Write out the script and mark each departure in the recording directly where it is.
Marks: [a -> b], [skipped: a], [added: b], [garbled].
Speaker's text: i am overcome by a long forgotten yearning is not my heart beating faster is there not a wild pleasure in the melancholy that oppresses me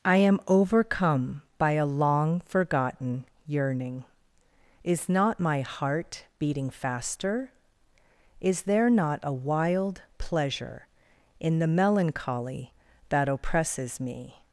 i am overcome by a long forgotten yearning is not my heart beating faster is there not a wild pleasure in the melancholy that oppresses me